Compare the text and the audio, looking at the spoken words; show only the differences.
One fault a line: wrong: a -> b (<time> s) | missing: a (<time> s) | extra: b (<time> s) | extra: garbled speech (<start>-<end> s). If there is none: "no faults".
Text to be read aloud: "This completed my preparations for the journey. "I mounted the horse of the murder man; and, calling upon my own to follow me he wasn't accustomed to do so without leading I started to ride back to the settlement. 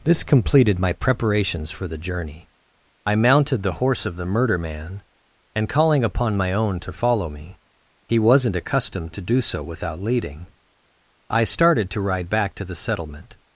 no faults